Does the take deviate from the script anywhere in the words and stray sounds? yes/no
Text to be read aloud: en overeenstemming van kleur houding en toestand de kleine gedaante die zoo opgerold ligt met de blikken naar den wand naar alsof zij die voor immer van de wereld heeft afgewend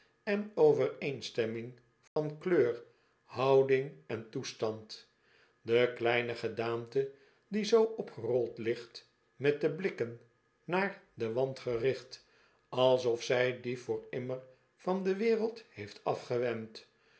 yes